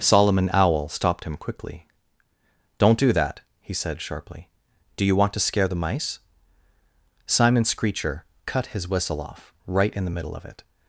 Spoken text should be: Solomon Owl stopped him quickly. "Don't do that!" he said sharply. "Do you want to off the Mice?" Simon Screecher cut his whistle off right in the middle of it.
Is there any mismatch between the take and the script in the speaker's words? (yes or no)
yes